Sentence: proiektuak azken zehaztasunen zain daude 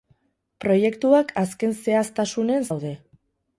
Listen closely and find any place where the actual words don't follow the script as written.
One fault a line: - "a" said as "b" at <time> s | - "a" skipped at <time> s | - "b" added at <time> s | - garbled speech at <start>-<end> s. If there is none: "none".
- "zain" skipped at 2.6 s